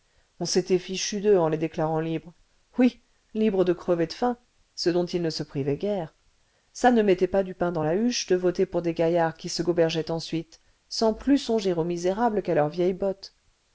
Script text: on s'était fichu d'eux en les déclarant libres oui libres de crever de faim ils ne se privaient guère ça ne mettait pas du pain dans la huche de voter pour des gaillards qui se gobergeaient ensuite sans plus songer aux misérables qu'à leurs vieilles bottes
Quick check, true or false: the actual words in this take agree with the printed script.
false